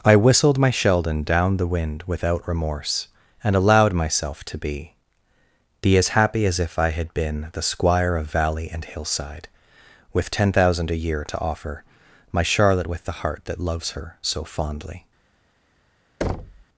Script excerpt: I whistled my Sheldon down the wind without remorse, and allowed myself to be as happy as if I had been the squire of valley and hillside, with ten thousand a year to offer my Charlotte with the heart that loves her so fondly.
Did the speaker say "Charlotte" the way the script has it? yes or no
yes